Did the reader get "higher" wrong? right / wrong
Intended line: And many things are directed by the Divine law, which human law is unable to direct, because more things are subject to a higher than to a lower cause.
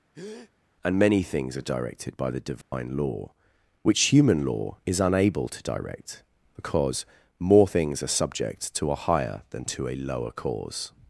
right